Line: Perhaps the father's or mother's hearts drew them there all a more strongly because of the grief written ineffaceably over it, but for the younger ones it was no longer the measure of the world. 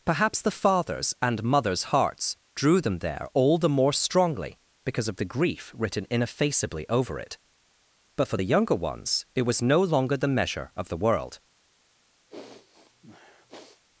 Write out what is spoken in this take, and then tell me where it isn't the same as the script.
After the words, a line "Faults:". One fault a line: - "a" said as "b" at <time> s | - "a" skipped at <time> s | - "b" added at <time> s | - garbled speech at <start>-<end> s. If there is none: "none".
Perhaps the father's and mother's hearts drew them there all the more strongly because of the grief written ineffaceably over it, but for the younger ones it was no longer the measure of the world.
Faults:
- "or" said as "and" at 1.2 s
- "a" said as "the" at 3.6 s